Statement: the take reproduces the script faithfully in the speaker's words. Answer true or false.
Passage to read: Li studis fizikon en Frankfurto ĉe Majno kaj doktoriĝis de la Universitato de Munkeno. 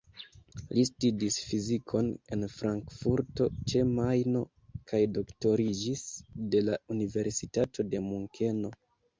true